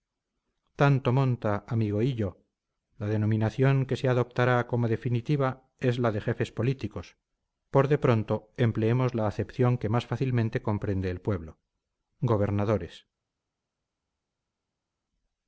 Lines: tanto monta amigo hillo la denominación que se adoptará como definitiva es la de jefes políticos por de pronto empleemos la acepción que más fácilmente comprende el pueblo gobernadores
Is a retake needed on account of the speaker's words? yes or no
no